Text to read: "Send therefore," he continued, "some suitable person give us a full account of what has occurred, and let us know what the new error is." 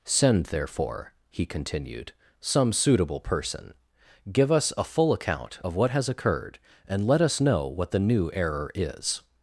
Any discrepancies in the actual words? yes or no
no